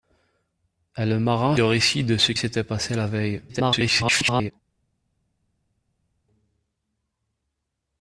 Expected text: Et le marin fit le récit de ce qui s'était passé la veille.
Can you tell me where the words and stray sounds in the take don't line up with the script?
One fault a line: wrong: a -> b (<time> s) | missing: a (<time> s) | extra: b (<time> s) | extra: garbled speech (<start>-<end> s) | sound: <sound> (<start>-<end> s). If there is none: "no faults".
missing: fit (1.6 s)
missing: qui (2.3 s)
extra: garbled speech (3.5-4.5 s)